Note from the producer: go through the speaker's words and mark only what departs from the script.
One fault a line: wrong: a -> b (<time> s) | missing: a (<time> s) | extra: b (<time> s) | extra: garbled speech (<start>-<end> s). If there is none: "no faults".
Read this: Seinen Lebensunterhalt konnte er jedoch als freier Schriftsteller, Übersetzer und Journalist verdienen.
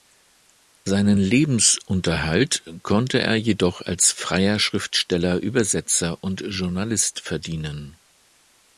no faults